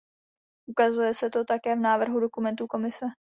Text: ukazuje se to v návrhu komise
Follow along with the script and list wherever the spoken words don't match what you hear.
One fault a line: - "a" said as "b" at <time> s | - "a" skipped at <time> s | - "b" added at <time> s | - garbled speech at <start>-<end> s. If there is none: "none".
- "také" added at 1.4 s
- "dokumentů" added at 2.2 s